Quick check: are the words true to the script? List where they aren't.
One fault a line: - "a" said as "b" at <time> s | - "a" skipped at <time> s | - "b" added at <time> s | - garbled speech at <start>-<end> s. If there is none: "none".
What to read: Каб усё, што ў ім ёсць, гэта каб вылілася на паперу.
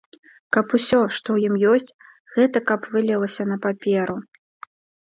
none